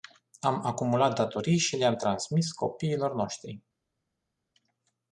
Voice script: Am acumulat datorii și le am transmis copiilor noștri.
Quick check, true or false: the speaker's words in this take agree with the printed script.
true